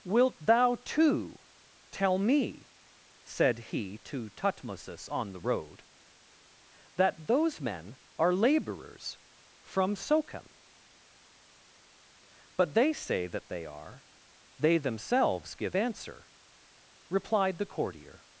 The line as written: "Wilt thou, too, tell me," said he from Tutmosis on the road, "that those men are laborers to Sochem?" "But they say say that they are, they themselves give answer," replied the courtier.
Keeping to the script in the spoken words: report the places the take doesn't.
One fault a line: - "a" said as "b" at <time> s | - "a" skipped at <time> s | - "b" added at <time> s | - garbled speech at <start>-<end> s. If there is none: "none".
- "from" said as "to" at 4.0 s
- "to" said as "from" at 9.6 s
- "say" skipped at 13.3 s